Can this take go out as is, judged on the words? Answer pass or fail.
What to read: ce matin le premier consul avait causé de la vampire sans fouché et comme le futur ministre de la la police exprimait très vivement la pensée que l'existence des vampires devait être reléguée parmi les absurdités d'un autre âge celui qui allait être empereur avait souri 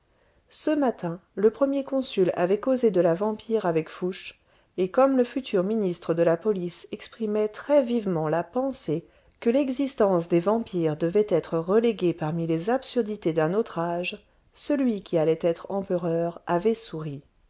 fail